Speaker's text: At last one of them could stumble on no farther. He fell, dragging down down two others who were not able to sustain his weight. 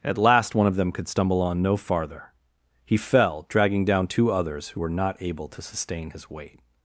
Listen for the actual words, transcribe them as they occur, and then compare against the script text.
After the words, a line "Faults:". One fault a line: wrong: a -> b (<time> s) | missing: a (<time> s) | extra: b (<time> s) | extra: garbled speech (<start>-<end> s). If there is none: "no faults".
At last one of them could stumble on no farther. He fell, dragging down two others who were not able to sustain his weight.
Faults:
missing: down (4.1 s)